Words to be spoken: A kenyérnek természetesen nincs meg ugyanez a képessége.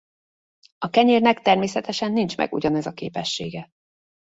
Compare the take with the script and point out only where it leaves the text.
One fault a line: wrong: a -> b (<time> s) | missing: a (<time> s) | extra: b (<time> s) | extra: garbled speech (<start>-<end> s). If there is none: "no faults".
no faults